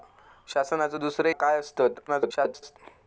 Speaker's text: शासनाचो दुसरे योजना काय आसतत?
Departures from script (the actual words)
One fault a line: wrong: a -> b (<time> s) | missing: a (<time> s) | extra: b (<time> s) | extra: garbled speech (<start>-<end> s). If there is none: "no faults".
missing: योजना (1.3 s)
extra: garbled speech (2.1-2.8 s)